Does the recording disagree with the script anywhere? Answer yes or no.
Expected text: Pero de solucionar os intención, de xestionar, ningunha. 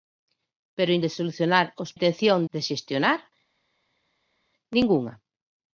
no